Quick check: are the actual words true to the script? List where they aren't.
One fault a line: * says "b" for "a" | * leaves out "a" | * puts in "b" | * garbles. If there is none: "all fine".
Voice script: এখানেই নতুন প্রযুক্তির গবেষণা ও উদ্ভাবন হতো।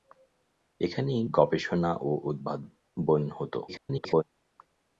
* leaves out "নতুন প্রযুক্তির"
* garbles